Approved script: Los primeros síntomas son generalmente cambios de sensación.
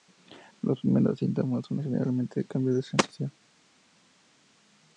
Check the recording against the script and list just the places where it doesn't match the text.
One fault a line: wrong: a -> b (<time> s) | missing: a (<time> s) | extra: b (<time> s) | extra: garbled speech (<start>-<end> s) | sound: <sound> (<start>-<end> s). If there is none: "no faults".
no faults